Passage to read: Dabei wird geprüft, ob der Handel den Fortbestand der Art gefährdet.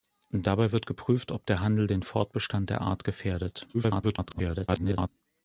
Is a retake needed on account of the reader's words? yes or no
yes